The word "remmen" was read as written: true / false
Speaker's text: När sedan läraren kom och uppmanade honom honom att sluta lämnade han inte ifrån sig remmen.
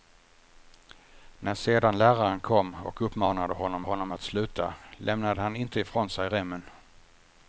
true